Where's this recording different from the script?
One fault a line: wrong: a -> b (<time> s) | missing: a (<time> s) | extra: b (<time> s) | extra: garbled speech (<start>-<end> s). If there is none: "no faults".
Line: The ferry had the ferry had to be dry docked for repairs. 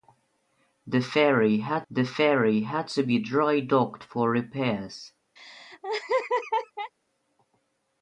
no faults